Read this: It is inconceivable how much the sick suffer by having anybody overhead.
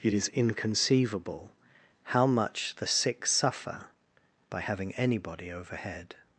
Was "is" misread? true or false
false